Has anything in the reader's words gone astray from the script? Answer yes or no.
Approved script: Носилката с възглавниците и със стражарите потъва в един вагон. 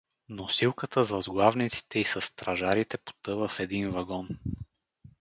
no